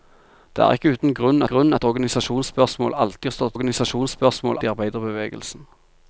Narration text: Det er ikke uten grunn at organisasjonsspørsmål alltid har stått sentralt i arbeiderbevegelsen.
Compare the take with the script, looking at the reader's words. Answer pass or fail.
fail